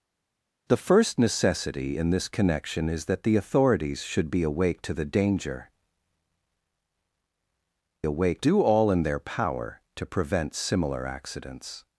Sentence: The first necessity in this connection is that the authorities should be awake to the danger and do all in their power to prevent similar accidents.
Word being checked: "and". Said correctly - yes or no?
no